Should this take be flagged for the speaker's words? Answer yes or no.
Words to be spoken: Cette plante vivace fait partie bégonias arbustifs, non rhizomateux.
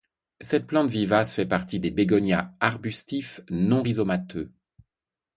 yes